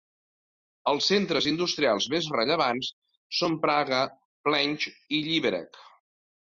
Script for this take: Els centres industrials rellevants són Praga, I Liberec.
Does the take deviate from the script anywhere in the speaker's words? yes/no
yes